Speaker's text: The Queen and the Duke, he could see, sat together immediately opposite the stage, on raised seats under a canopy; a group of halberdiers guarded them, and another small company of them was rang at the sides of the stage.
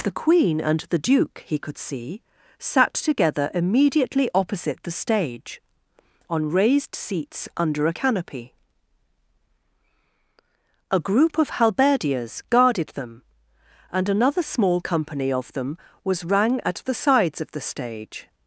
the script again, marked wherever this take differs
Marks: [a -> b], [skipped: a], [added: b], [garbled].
The Queen and the Duke, he could see, sat together immediately opposite the stage, on raised seats under a canopy; a group of halberdiers guarded them, and another small company of them was rang at the sides of the stage.